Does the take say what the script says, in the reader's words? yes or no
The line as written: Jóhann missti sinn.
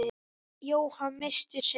yes